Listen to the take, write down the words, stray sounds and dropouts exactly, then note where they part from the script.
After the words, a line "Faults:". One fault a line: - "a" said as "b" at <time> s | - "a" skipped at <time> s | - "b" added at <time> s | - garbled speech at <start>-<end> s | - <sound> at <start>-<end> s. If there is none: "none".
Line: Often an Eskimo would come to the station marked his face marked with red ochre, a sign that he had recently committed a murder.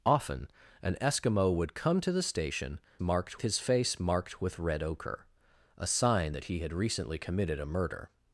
Often an Eskimo would come to the station marked his face marked with red ochre, a sign that he had recently committed a murder.
Faults:
none